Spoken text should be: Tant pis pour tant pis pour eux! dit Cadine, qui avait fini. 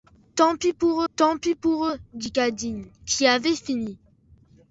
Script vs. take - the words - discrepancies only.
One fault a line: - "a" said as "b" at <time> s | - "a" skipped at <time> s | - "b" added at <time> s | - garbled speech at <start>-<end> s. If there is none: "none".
none